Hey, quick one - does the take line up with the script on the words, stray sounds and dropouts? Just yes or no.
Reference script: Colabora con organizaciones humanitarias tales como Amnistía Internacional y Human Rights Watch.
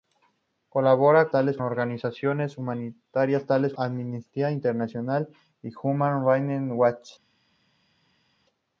no